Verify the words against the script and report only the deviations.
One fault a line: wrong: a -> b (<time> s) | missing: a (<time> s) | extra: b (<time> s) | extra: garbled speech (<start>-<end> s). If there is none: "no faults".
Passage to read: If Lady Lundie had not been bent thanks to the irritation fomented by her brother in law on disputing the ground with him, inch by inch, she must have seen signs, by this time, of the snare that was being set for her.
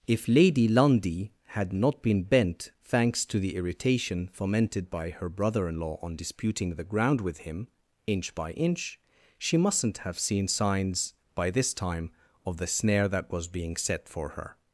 wrong: must -> mustn't (9.6 s)